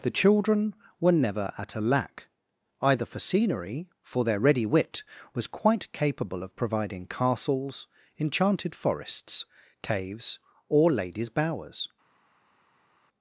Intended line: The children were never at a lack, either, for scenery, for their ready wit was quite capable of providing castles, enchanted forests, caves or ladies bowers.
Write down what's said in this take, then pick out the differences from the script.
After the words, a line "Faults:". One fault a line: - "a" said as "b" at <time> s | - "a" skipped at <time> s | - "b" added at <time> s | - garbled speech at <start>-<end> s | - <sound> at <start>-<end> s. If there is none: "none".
The children were never at a lack, either, for scenery, for their ready wit was quite capable of providing castles, enchanted forests, caves or ladies bowers.
Faults:
none